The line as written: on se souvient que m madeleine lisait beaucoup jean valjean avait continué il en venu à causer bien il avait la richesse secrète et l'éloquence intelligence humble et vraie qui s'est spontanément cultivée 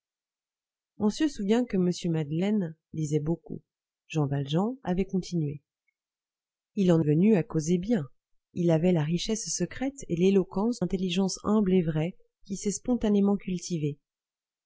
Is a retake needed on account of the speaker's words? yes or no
no